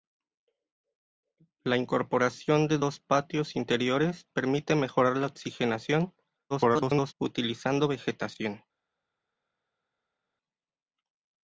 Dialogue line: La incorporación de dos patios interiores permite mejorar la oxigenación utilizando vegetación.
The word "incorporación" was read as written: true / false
true